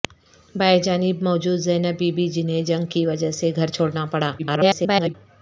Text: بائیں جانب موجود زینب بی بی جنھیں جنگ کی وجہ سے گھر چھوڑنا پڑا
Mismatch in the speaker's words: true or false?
true